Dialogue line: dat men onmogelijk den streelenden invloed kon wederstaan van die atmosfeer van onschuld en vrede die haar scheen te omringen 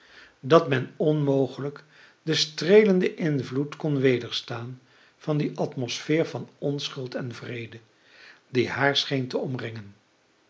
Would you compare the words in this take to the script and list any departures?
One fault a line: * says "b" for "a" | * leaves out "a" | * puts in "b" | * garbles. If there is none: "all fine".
all fine